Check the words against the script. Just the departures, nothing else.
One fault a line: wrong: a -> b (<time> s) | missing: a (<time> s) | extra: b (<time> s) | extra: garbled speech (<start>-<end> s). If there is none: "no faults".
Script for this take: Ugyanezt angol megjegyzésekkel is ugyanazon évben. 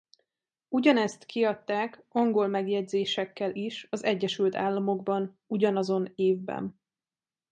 extra: kiadták (1.2 s)
extra: az Egyesült Államokban (3.9 s)